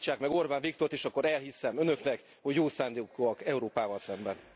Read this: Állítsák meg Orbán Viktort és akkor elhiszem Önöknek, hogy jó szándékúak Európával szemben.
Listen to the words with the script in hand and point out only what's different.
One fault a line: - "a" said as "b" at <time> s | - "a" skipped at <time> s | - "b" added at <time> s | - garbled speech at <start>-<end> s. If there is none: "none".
none